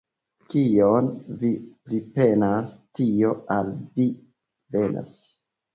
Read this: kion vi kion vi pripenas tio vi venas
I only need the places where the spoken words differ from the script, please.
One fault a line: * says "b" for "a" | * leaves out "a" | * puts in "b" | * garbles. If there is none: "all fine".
* leaves out "kion vi"
* puts in "al"